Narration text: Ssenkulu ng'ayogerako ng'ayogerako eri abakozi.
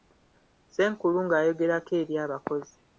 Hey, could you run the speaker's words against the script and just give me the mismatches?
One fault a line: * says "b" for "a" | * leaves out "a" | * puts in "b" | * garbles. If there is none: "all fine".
* leaves out "ng'ayogerako"